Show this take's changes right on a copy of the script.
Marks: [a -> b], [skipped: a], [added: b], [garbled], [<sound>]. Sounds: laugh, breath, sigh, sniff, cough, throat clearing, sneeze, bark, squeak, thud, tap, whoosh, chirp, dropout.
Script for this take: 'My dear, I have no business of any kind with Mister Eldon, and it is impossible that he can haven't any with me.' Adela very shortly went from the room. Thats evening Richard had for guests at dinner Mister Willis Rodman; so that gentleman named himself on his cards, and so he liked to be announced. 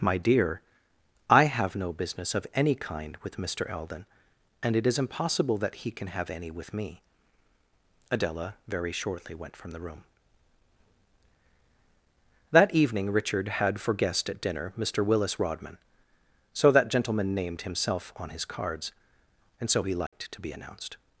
'My dear, I have no business of any kind with Mister Eldon, and it is impossible that he can [haven't -> have] any with me.' Adela very shortly went from the room. [Thats -> That] evening Richard had for [guests -> guest] at dinner Mister Willis Rodman; so that gentleman named himself on his cards, and so he liked [dropout] to be announced.